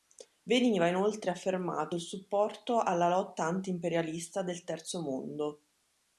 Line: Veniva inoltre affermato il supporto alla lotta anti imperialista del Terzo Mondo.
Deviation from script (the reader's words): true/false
false